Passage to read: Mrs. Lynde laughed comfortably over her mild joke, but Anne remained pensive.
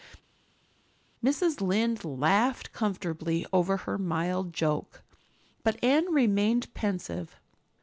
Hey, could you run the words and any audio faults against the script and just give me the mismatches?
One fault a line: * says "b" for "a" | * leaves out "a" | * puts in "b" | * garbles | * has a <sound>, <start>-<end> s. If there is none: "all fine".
all fine